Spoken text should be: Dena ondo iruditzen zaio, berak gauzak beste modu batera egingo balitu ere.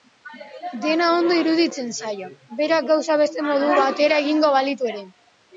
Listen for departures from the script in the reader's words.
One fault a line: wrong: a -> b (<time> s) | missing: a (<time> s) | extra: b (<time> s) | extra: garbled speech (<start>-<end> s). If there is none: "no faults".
no faults